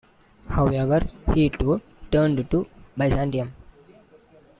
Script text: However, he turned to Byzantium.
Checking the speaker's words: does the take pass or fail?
fail